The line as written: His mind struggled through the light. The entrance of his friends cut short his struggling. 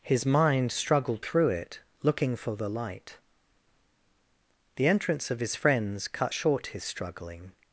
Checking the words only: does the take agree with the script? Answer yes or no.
no